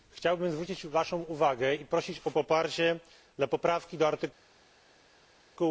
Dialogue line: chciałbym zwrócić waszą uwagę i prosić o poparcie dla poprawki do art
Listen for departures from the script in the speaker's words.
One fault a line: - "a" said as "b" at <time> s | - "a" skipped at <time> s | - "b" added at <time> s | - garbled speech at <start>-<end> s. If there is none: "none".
none